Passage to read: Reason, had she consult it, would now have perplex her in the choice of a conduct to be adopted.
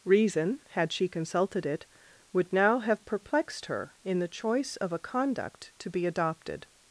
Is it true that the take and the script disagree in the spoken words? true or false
true